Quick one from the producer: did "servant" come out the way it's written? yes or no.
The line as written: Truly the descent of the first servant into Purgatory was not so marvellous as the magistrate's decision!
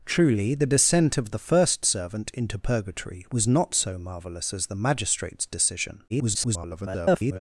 yes